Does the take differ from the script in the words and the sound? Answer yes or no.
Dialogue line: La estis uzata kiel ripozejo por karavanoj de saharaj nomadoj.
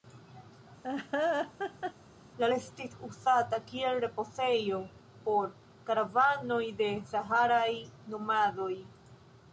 yes